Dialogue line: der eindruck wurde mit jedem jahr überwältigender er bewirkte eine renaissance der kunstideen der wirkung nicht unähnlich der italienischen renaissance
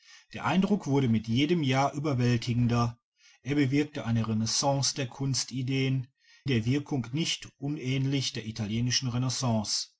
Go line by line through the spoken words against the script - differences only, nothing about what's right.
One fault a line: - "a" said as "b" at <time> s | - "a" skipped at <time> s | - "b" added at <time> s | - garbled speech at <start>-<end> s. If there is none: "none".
none